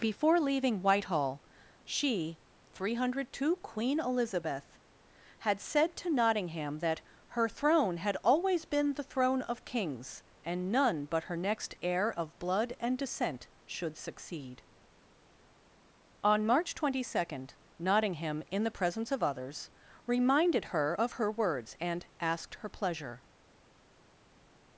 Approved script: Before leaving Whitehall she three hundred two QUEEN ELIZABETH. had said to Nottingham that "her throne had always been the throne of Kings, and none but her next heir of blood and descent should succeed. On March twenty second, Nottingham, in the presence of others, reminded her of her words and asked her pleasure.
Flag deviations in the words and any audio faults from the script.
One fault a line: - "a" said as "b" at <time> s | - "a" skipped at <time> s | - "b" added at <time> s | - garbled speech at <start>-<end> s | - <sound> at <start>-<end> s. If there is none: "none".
none